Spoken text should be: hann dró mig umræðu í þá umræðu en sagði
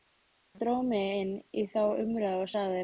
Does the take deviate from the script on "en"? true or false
true